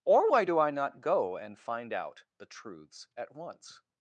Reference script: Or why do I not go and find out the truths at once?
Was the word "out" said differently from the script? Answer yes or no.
no